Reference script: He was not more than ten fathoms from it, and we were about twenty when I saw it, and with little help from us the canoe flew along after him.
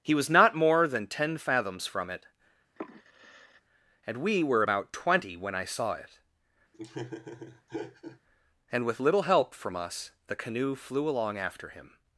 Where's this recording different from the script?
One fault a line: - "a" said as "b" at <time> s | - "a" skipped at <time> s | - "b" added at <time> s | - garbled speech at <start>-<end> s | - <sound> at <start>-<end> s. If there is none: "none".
- sigh at 2.8-3.6 s
- laugh at 6.7-8.2 s